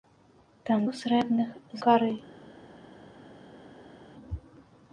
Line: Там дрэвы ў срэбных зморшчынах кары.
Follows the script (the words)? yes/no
no